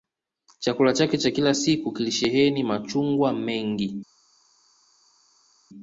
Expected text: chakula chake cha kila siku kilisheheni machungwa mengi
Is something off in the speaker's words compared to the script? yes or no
no